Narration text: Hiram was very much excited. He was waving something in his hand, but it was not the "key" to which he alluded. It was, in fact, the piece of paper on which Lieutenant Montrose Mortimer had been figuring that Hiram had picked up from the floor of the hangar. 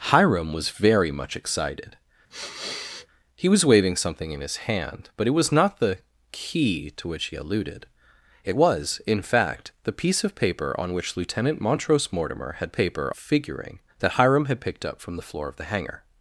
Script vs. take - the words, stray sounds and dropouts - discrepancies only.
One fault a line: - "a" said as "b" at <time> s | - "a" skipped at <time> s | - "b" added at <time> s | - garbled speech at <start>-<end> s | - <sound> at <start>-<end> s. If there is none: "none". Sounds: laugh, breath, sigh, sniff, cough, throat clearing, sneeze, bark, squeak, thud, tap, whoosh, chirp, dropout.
- sniff at 2.3-3.1 s
- "been" said as "paper" at 12.7 s